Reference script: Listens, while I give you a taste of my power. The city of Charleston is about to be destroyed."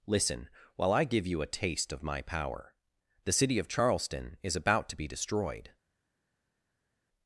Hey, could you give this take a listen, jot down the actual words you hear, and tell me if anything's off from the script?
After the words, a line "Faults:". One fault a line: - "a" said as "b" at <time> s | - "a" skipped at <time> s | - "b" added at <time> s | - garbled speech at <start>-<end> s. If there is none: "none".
Listen, while I give you a taste of my power. The city of Charleston is about to be destroyed."
Faults:
- "Listens" said as "Listen" at 0.1 s